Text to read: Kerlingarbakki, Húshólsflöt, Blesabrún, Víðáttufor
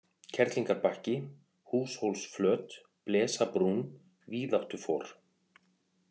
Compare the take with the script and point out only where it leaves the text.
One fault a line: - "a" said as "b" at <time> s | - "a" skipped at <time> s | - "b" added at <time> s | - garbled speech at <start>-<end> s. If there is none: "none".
none